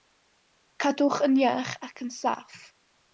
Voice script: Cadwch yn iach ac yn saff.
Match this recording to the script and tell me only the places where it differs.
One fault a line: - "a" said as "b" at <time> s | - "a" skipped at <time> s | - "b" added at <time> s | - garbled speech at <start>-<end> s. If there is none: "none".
none